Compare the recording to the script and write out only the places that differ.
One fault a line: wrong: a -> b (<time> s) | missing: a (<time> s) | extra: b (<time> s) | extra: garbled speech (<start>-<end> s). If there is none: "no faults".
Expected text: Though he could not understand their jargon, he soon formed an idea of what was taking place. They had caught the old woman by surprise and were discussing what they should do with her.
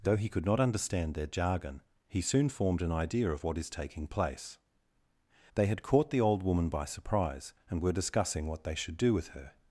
wrong: was -> is (3.6 s)